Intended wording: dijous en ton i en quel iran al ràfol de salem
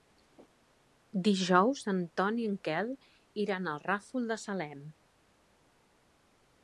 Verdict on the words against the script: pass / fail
pass